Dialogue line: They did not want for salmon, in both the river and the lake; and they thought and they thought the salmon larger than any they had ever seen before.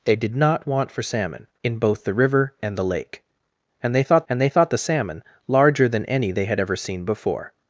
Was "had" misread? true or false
false